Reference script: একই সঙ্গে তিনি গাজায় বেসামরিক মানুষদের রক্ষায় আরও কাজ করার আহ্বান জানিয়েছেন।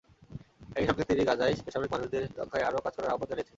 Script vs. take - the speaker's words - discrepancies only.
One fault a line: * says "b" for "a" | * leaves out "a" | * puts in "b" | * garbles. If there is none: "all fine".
all fine